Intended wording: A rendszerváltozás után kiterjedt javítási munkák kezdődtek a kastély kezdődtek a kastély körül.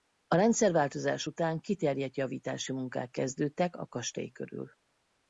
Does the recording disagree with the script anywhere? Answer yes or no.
yes